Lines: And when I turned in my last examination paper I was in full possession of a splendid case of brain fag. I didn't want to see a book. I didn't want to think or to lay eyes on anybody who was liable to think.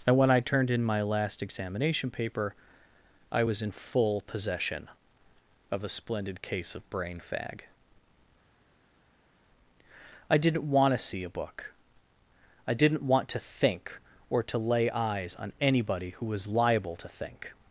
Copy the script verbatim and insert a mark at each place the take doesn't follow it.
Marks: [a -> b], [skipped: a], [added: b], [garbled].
And when I turned in my last examination paper I was in full possession of a splendid case of brain fag. I didn't want to see a book. I didn't want to think or to lay eyes on anybody who was liable to think.